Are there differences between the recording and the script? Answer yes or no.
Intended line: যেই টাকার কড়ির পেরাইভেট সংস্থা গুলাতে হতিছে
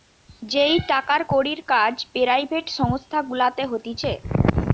yes